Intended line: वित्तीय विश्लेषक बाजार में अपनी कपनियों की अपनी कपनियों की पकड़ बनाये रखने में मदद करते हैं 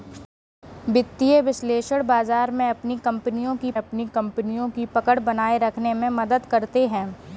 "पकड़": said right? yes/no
yes